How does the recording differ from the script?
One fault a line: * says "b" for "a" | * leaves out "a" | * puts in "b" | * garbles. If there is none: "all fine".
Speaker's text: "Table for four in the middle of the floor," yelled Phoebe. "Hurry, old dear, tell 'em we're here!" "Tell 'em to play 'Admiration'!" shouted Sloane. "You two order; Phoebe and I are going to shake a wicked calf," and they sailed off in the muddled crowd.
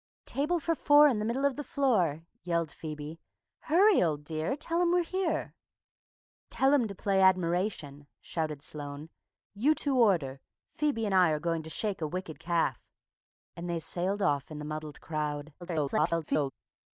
* garbles